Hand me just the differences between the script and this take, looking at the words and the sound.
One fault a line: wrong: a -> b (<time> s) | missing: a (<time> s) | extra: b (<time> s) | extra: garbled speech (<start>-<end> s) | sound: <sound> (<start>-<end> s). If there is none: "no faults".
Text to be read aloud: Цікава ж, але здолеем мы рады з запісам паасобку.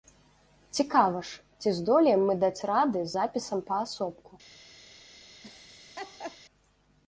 wrong: але -> ці (1.6 s)
extra: даць (2.5 s)
sound: laugh (5.4-6.4 s)